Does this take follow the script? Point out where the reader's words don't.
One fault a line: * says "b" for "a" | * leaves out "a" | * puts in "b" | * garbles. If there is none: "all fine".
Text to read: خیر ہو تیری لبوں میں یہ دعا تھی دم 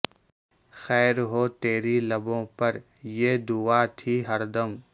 * says "پر" for "میں"
* puts in "ہر"